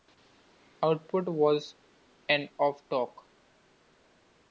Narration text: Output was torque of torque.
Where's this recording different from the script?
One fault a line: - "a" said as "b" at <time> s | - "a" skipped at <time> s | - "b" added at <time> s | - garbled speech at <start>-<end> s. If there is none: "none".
- "torque" said as "and" at 2.3 s